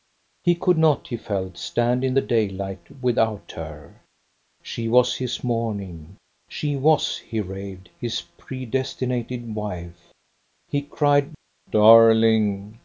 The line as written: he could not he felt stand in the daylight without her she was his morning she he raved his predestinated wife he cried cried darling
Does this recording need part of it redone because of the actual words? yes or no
yes